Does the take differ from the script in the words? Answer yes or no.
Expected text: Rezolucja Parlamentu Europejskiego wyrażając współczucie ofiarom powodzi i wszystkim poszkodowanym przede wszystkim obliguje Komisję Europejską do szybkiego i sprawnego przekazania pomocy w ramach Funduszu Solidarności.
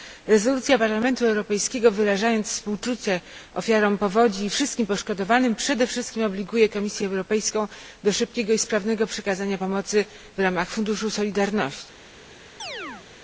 no